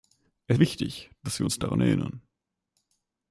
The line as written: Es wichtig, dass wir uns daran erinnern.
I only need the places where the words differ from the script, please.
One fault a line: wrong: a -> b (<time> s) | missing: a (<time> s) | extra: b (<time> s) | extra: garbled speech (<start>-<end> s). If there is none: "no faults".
no faults